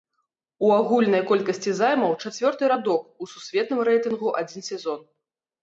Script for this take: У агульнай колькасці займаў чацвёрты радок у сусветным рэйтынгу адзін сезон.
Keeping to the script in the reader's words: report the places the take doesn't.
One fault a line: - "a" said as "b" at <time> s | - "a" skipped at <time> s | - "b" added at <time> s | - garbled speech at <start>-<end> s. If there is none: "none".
none